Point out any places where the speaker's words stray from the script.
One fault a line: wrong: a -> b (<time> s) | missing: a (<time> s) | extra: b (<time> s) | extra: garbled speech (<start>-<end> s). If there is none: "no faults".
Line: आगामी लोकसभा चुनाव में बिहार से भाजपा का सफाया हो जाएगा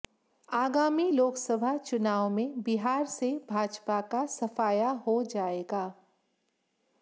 no faults